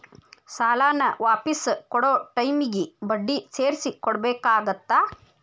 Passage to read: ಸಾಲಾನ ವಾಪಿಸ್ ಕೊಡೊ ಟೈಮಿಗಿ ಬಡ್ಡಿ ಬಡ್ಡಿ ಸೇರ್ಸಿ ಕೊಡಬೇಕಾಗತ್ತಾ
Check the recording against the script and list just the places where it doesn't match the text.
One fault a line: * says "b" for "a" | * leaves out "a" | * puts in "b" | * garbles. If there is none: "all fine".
* leaves out "ಬಡ್ಡಿ"